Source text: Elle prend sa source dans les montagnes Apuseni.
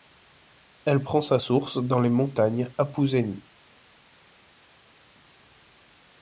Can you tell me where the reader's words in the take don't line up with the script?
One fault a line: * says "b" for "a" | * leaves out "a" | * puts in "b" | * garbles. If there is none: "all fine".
all fine